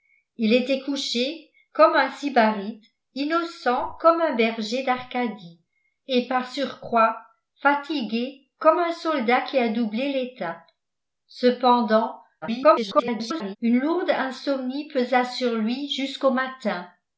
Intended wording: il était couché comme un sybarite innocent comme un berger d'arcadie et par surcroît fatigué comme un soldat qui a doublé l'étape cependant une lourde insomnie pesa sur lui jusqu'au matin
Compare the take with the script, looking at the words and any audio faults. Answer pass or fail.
fail